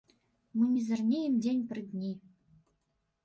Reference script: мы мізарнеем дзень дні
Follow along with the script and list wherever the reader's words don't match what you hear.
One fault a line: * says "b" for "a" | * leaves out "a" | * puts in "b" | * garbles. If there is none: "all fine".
* puts in "пры"